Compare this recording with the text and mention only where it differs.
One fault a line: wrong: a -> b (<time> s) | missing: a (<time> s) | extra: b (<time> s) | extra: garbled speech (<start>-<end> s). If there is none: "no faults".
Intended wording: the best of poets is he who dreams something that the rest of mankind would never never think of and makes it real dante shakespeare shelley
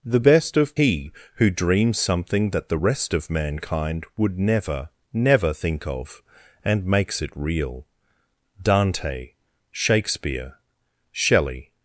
missing: poets is (0.8 s)